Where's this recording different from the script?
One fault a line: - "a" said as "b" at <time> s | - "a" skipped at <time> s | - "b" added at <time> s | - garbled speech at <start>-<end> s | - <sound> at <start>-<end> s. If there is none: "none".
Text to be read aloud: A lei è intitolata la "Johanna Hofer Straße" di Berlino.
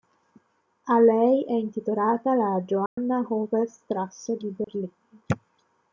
- dropout at 2.9-3.0 s
- dropout at 4.6-4.7 s